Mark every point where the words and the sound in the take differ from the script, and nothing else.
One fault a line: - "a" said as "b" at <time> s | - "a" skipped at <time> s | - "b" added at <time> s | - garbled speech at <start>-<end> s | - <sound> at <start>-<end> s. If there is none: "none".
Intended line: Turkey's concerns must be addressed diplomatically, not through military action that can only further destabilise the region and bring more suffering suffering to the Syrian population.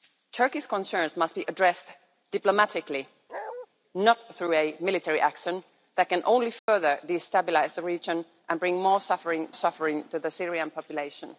- bark at 3.3-3.7 s
- dropout at 6.6-6.7 s